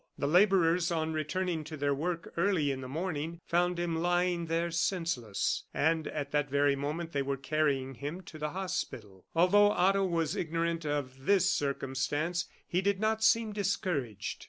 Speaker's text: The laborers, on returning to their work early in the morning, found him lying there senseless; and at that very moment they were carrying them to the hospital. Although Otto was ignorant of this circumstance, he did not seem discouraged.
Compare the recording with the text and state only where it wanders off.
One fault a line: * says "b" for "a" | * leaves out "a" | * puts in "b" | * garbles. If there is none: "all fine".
* says "him" for "them"